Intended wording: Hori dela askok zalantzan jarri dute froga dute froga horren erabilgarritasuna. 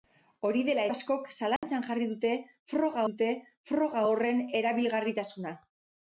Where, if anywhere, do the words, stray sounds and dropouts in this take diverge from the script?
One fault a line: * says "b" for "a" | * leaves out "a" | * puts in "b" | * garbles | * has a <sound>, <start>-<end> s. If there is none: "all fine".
* has a dropout, 1.6-1.6 s